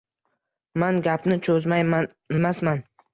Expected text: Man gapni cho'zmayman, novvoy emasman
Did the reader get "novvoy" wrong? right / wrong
wrong